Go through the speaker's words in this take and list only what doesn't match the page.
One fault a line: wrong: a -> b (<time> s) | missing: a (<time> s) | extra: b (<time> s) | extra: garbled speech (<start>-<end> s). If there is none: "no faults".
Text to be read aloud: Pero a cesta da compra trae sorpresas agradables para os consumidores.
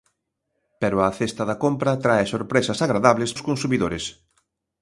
missing: para (3.3 s)